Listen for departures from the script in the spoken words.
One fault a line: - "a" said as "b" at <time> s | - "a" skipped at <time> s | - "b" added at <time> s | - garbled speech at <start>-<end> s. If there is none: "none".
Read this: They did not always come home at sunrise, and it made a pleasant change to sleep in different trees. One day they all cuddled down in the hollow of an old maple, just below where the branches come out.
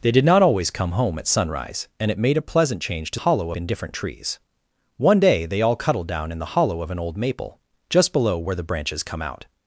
- "sleep" said as "hollow" at 3.2 s